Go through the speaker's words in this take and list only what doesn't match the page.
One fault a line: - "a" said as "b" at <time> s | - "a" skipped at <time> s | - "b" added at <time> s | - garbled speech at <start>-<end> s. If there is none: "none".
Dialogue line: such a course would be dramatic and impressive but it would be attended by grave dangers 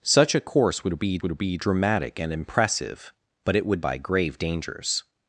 - "would be" added at 1.2 s
- "be attended" skipped at 3.8 s